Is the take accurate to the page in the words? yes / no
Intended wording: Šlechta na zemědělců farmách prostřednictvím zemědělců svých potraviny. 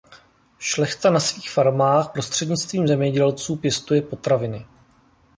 no